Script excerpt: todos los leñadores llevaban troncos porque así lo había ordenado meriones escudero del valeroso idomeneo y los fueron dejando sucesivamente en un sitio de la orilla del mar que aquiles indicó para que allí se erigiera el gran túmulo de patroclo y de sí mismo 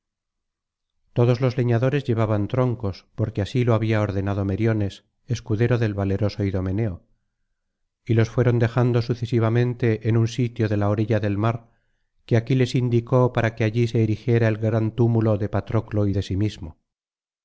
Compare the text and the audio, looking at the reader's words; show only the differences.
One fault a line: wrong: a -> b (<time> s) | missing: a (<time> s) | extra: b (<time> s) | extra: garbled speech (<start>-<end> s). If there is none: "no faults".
no faults